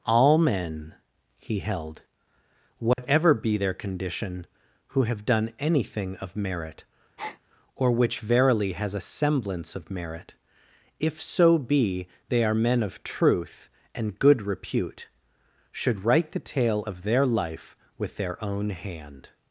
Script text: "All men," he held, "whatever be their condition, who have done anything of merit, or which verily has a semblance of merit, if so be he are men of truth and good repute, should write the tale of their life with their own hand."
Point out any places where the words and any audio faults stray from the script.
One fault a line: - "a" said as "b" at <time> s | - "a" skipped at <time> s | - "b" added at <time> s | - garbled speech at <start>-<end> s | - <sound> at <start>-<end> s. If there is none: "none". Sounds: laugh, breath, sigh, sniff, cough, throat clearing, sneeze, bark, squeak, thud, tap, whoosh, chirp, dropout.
- dropout at 2.9-3.0 s
- breath at 7.2-7.4 s
- "he" said as "they" at 12.3 s